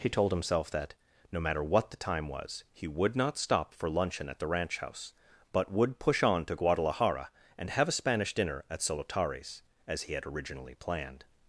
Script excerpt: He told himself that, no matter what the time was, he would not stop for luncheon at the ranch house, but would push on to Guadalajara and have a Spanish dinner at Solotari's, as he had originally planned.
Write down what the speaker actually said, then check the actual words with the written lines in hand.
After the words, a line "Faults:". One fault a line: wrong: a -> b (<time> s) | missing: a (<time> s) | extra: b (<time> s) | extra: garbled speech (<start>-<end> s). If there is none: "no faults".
He told himself that, no matter what the time was, he would not stop for luncheon at the ranch house, but would push on to Guadalajara and have a Spanish dinner at Solotari's, as he had originally planned.
Faults:
no faults